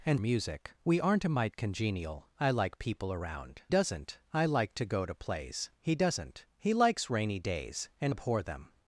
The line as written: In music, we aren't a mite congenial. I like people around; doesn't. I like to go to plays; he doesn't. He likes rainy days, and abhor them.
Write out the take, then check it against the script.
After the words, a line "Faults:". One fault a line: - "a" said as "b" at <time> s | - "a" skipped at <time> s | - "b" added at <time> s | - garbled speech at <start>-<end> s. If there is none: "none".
In music, we aren't a mite congenial. I like people around; doesn't. I like to go to plays; he doesn't. He likes rainy days, and abhor them.
Faults:
none